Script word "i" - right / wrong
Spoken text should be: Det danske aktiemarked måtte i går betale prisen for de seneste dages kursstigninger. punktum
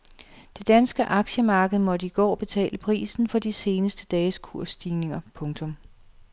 right